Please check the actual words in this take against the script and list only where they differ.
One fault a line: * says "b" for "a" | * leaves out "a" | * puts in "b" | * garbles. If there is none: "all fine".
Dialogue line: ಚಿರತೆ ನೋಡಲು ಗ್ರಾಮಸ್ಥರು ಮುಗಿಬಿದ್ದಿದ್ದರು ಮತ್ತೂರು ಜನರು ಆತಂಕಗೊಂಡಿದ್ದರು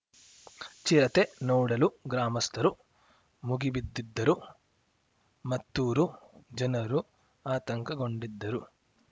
all fine